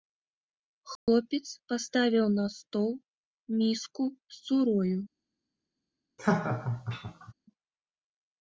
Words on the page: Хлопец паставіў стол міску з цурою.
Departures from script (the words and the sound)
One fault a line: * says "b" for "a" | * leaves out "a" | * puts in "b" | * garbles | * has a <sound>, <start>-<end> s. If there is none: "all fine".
* has a dropout, 1.0-1.1 s
* puts in "на"
* has a laugh, 6.2-7.3 s